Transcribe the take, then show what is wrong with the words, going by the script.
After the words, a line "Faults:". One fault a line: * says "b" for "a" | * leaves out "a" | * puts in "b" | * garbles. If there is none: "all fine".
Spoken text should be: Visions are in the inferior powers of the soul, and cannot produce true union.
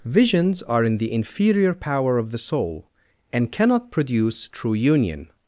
Visions are in the inferior power of the soul, and cannot produce true union.
Faults:
* says "power" for "powers"